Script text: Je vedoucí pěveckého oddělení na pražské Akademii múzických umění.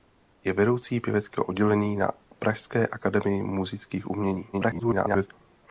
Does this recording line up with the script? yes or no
no